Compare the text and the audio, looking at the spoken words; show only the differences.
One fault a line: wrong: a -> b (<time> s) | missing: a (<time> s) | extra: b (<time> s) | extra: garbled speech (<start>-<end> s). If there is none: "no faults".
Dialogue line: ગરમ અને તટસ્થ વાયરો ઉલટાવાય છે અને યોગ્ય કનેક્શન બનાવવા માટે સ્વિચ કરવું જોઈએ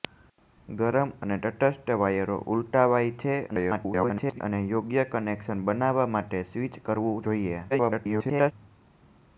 extra: garbled speech (3.5-4.4 s)
extra: garbled speech (7.7-8.5 s)